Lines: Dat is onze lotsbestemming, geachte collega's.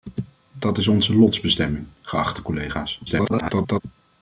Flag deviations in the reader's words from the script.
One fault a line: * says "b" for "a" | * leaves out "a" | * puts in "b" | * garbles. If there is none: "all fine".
* garbles